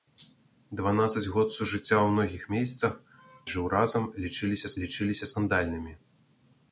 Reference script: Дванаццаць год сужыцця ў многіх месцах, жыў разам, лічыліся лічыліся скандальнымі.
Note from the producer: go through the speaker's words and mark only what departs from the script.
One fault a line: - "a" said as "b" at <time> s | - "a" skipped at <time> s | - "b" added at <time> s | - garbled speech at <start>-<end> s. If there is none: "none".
none